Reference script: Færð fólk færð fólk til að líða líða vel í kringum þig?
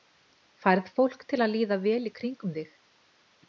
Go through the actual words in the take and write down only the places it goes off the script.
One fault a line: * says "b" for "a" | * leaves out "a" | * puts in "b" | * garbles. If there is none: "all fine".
* leaves out "færð fólk"
* leaves out "líða"